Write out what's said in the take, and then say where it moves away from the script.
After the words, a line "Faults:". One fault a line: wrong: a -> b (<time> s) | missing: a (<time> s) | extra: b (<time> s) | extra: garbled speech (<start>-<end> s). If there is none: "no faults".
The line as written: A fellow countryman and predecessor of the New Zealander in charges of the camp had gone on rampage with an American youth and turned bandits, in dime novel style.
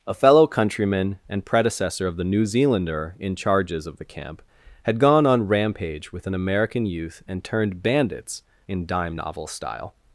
A fellow countryman and predecessor of the New Zealander in charges of the camp had gone on rampage with an American youth and turned bandits, in dime novel style.
Faults:
no faults